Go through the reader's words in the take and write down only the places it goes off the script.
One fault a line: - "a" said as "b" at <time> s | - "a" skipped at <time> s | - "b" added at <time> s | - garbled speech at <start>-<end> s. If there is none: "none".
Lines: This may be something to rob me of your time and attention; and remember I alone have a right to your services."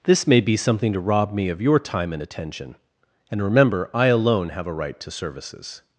- "your" skipped at 5.1 s